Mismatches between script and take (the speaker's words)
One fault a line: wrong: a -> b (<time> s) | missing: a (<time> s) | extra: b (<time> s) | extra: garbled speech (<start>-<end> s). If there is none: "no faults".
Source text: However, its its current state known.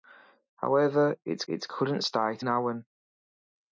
no faults